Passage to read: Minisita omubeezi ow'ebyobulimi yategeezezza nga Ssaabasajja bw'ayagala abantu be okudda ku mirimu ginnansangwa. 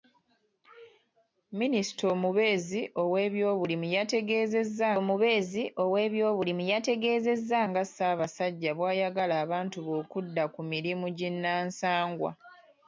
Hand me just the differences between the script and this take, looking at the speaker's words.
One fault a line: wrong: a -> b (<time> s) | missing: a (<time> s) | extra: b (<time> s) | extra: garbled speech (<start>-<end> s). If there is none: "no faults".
extra: omubeezi ow'ebyobulimi yategeezezza (5.0 s)